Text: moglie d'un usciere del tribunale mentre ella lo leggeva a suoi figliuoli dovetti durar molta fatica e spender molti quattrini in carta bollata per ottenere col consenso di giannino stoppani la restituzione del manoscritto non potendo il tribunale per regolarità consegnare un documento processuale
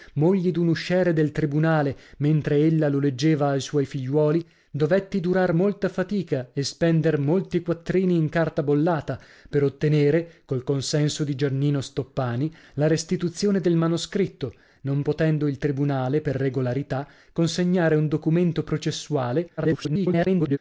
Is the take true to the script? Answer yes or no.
no